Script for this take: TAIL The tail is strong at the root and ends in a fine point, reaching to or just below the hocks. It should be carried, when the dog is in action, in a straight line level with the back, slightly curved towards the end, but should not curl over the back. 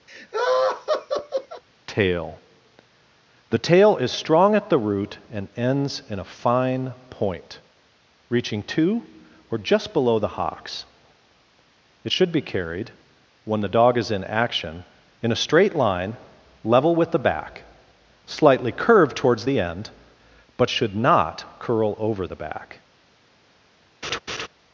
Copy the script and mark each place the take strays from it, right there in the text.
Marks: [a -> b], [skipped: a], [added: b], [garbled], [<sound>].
[laugh] TAIL The tail is strong at the root and ends in a fine point, reaching to or just below the hocks. It should be carried, when the dog is in action, in a straight line level with the back, slightly curved towards the end, but should not curl over the back. [laugh]